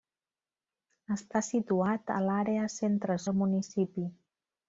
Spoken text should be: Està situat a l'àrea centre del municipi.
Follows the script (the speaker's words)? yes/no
yes